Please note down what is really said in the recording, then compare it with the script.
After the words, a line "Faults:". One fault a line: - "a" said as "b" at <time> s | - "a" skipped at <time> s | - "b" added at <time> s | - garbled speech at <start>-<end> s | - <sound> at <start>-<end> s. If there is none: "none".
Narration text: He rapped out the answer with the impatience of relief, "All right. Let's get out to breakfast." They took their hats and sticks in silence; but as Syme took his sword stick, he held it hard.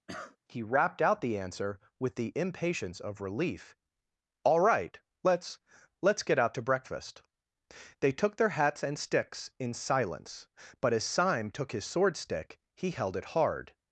He rapped out the answer with the impatience of relief, "All right. Let's Let's get out to breakfast." They took their hats and sticks in silence; but as Syme took his sword stick, he held it hard.
Faults:
- cough at 0.1-0.4 s
- "Let's" added at 6.0 s